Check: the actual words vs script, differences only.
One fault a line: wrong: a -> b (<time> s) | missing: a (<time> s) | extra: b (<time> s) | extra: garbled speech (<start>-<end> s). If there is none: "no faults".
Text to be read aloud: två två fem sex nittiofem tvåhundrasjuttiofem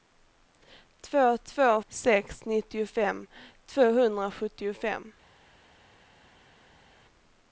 missing: fem (1.8 s)